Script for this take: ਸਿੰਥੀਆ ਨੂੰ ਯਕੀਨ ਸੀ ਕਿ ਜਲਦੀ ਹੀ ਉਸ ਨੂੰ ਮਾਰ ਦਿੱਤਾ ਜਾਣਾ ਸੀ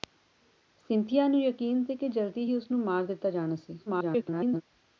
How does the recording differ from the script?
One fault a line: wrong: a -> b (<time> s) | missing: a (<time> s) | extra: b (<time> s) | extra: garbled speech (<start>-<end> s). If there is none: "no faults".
extra: garbled speech (3.9-4.6 s)